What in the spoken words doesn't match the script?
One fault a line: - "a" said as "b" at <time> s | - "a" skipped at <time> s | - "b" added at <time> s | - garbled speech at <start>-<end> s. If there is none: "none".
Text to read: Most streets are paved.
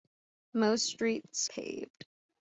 - "are" skipped at 1.5 s